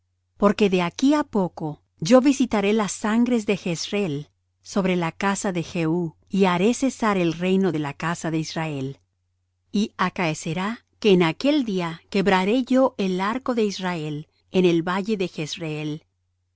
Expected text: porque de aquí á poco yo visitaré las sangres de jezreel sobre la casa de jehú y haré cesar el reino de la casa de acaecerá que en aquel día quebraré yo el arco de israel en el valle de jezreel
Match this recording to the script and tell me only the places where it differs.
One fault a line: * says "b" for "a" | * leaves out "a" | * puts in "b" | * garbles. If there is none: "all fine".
* puts in "israel y"